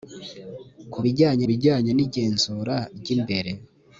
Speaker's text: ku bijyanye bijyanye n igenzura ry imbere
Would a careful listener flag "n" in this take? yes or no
no